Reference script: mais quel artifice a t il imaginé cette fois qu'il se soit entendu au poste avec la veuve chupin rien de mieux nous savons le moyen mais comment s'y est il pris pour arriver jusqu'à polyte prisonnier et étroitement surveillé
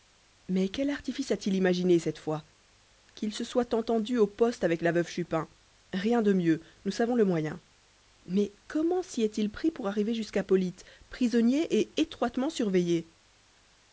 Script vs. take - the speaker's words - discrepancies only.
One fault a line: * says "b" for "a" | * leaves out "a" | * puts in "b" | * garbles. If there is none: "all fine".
all fine